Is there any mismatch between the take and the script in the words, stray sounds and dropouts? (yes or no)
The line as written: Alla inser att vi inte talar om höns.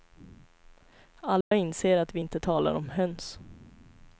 yes